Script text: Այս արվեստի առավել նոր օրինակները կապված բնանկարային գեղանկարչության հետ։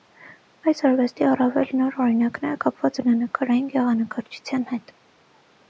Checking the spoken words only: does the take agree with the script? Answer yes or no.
yes